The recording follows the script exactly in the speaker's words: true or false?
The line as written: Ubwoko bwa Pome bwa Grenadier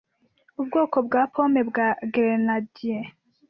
true